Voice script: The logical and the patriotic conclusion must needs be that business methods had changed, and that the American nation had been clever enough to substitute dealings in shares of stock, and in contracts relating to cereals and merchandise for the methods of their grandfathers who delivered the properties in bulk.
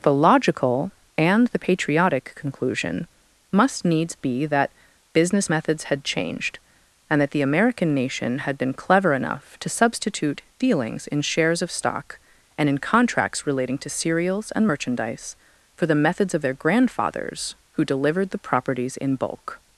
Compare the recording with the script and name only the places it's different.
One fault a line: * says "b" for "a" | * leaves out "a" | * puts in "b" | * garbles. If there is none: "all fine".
all fine